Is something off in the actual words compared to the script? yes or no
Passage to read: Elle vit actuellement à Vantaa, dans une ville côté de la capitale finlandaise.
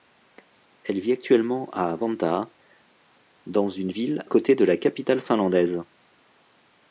no